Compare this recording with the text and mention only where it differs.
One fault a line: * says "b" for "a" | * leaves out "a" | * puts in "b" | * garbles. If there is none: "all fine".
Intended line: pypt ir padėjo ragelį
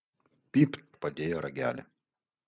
all fine